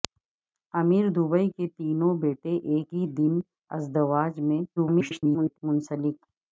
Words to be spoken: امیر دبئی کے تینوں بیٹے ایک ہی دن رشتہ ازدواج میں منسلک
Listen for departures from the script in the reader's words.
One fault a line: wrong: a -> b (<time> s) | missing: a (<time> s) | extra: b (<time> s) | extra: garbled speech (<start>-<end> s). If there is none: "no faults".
missing: رشتہ (3.3 s)
extra: garbled speech (4.8-5.6 s)